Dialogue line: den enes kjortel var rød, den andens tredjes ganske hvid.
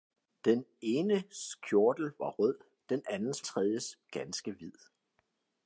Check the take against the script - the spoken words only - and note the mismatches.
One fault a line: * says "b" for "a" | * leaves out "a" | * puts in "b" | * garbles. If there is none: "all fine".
all fine